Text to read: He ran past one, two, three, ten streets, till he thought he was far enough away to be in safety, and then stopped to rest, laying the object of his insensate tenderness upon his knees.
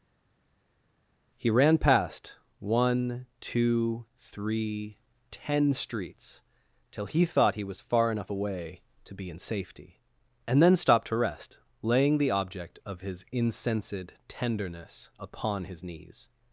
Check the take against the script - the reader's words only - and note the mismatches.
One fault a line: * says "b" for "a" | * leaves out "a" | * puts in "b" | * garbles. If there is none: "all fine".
all fine